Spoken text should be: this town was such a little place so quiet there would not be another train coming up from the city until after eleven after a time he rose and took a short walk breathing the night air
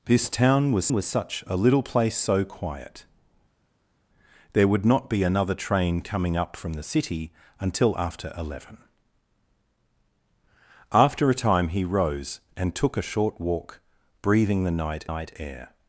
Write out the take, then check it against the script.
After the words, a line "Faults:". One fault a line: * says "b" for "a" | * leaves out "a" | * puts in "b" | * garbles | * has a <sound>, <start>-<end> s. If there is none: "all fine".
this town was was such a little place so quiet there would not be another train coming up from the city until after eleven after a time he rose and took a short walk breathing the night night air
Faults:
* puts in "was"
* puts in "night"